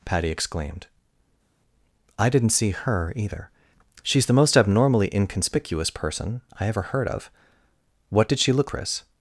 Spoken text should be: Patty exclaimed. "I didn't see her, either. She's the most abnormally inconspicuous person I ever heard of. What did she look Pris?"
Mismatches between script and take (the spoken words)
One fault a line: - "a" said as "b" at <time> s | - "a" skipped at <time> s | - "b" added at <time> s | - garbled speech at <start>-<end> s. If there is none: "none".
none